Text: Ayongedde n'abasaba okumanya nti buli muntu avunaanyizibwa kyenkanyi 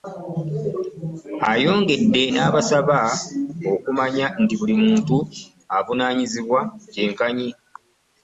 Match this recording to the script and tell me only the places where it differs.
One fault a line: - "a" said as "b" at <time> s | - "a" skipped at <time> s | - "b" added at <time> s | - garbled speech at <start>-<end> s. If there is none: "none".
none